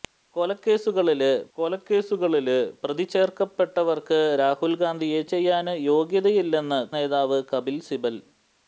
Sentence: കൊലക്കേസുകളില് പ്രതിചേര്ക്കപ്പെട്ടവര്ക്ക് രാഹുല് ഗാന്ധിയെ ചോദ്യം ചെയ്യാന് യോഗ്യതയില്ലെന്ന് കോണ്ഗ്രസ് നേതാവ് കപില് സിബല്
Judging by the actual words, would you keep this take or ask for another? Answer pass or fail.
fail